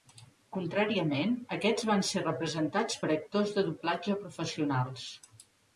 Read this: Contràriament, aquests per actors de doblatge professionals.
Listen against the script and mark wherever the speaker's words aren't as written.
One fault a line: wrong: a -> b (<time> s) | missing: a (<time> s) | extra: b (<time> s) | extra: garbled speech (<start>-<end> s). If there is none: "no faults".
extra: van ser representats (1.9 s)